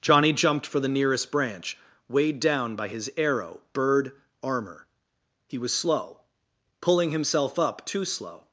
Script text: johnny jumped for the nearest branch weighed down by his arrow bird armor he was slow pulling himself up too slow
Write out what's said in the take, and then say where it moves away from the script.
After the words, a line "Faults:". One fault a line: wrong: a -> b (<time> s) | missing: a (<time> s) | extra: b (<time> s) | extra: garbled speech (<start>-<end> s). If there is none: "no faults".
johnny jumped for the nearest branch weighed down by his arrow bird armor he was slow pulling himself up too slow
Faults:
no faults